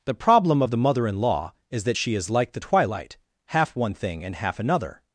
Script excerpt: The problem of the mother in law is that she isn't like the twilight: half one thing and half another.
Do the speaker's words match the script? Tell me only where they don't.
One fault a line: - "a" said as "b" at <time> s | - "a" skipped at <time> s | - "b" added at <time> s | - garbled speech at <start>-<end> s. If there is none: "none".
- "isn't" said as "is" at 2.1 s